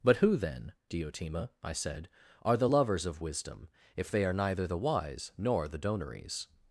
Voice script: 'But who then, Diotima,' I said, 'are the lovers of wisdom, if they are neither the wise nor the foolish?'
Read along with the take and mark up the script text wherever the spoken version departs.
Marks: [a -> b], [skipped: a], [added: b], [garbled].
'But who then, Diotima,' I said, 'are the lovers of wisdom, if they are neither the wise nor the [foolish?' -> donaries]